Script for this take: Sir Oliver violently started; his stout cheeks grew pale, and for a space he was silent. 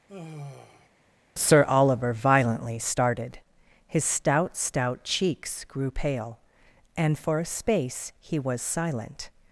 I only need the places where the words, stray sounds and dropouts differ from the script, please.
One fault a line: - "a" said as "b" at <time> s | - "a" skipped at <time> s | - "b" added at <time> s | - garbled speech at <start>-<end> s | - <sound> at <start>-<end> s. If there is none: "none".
- sigh at 0.1-0.9 s
- "stout" added at 4.6 s